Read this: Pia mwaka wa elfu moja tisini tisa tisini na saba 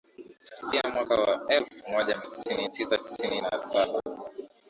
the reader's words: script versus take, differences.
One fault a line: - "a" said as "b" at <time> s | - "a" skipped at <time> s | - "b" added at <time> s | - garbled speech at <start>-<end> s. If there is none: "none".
none